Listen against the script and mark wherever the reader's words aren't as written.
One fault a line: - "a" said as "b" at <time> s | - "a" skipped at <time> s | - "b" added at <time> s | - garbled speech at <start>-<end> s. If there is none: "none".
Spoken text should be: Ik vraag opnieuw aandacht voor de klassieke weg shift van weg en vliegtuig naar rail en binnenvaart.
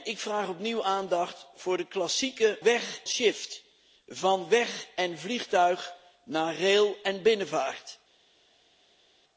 none